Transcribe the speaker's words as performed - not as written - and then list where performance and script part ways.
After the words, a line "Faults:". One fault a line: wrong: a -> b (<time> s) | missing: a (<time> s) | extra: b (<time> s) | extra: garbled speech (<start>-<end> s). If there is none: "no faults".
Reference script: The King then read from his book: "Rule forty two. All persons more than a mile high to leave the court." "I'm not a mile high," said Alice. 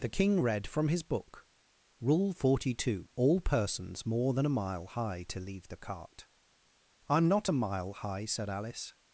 The King read from his book: "Rule forty two. All persons more than a mile high to leave the cart." "I'm not a mile high," said Alice.
Faults:
missing: then (0.4 s)
wrong: court -> cart (5.8 s)